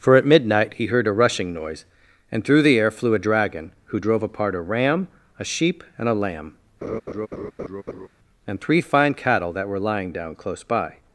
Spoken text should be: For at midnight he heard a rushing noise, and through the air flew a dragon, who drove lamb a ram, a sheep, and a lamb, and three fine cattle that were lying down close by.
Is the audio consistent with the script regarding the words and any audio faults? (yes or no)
no